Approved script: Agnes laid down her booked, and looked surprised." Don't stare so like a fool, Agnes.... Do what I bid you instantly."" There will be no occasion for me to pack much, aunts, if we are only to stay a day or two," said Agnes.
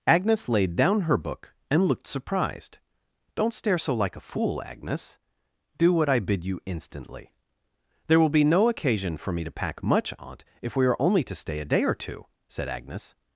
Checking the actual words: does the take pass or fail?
fail